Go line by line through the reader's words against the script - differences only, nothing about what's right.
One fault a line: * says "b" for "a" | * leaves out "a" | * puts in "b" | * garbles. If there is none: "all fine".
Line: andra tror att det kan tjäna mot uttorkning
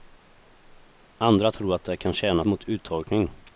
all fine